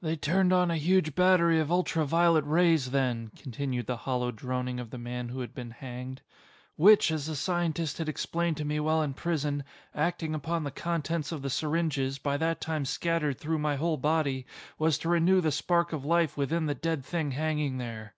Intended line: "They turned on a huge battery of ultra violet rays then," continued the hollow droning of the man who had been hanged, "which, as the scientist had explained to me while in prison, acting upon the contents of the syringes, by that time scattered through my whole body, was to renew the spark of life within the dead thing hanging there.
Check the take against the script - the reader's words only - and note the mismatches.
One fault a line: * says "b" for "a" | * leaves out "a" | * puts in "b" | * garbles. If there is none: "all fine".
all fine